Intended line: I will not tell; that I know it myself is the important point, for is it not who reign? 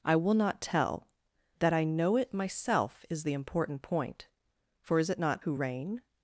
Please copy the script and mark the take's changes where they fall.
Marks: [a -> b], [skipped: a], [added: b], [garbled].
I will not tell; that I know it myself is the important point, for is it not who reign?